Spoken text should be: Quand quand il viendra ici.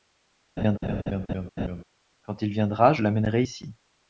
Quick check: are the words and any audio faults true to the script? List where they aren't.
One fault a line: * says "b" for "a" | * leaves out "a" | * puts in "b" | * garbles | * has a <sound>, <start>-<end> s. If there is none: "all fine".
* has a laugh, 0.6-1.8 s
* leaves out "quand"
* puts in "je l'amènerai"